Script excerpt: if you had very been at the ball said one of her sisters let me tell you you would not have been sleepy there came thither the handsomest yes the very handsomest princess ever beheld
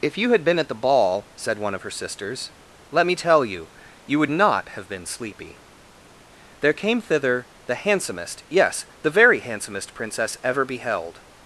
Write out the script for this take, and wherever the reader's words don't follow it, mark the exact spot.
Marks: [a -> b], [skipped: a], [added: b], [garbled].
if you had [skipped: very] been at the ball said one of her sisters let me tell you you would not have been sleepy there came thither the handsomest yes the very handsomest princess ever beheld